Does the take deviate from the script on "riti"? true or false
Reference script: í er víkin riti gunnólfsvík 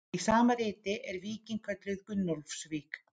true